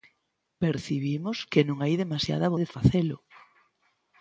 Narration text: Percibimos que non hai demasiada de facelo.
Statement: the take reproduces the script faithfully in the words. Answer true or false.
true